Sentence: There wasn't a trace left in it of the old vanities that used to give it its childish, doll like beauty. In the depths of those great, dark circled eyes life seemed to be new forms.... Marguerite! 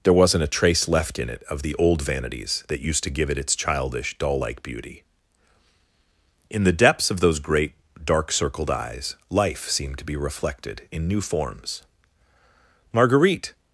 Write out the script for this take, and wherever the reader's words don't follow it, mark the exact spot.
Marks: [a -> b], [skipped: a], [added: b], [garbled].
There wasn't a trace left in it of the old vanities that used to give it its childish, doll like beauty. In the depths of those great, dark circled eyes life seemed to be [added: reflected in] new forms.... Marguerite!